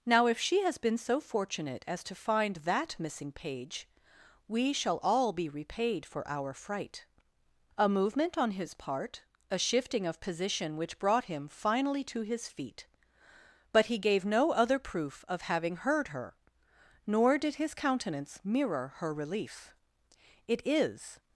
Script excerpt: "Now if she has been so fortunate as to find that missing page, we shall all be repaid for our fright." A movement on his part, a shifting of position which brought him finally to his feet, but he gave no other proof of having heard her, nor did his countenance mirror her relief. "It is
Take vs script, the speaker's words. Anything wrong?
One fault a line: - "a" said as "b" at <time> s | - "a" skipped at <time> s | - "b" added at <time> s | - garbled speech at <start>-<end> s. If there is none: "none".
none